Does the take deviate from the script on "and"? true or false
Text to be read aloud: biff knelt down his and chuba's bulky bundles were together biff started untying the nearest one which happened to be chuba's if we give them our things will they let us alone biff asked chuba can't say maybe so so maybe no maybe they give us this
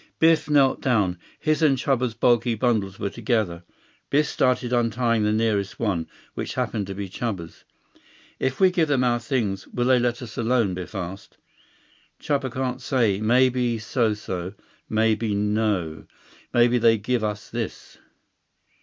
false